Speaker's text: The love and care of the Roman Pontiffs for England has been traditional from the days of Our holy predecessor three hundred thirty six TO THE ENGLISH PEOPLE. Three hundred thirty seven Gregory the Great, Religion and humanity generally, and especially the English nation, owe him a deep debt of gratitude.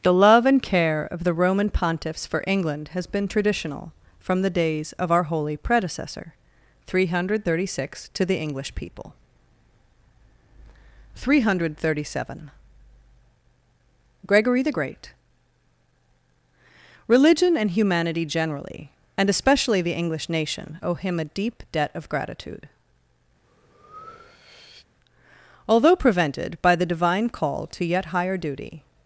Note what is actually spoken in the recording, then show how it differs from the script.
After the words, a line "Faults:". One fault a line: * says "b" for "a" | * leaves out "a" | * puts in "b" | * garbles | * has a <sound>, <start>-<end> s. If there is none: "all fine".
The love and care of the Roman Pontiffs for England has been traditional from the days of Our holy predecessor three hundred thirty six TO THE ENGLISH PEOPLE. Three hundred thirty seven Gregory the Great, Religion and humanity generally, and especially the English nation, owe him a deep debt of gratitude. Although prevented, by the divine call to yet higher duty
Faults:
* has a breath, 23.4-24.9 s
* puts in "Although prevented by the divine call to yet higher duty"